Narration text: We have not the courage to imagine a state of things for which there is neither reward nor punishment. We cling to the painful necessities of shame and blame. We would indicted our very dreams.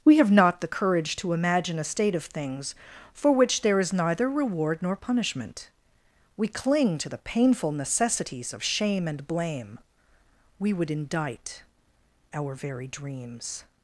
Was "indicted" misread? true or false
true